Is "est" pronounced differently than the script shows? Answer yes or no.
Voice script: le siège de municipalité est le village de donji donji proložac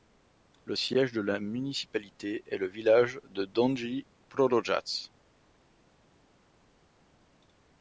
no